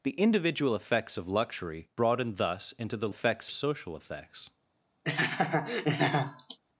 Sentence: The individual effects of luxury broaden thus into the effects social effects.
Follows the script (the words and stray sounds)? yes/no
no